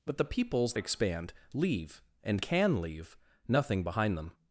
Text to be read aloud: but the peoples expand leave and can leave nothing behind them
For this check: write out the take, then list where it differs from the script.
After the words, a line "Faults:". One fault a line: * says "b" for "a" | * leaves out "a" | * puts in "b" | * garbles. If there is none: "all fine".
but the peoples expand leave and can leave nothing behind them
Faults:
all fine